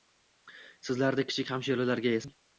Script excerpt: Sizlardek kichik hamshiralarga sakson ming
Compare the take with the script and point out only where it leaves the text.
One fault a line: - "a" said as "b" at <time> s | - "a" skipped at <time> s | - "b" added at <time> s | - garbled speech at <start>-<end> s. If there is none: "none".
- "sakson" skipped at 2.2 s